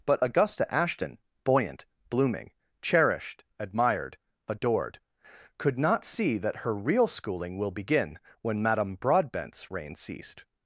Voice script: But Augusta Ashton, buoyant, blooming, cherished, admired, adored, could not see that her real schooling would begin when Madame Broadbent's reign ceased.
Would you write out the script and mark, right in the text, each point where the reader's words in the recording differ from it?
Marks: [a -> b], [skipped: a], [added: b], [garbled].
But Augusta Ashton, buoyant, blooming, cherished, admired, adored, could not see that her real schooling [would -> will] begin when Madame Broadbent's reign ceased.